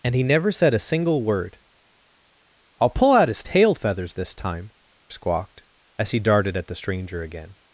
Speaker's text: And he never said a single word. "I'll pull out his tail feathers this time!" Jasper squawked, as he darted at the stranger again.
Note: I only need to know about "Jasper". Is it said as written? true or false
false